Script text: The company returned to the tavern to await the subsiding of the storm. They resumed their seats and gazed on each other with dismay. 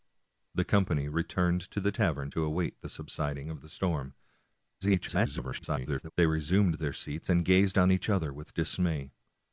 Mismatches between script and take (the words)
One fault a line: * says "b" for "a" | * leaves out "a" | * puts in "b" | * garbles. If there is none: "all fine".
* garbles